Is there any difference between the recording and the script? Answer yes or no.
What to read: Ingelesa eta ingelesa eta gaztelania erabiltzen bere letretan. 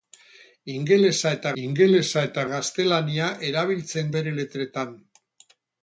no